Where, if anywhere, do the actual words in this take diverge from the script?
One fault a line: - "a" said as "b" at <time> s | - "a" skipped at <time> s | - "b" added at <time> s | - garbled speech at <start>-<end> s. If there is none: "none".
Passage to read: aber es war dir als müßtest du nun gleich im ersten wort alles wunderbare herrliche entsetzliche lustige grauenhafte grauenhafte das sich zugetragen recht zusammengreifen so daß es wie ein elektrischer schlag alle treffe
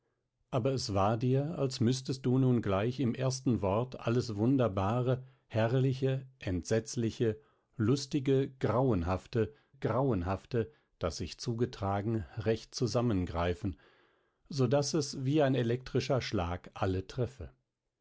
none